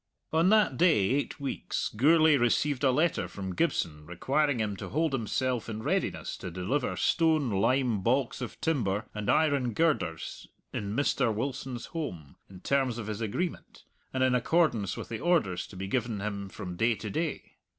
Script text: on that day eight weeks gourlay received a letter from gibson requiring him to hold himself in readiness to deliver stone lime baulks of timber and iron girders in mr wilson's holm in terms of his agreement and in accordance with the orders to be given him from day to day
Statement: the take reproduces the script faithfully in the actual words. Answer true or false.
true